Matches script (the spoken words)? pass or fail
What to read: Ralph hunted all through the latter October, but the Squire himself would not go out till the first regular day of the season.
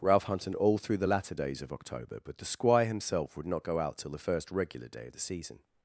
fail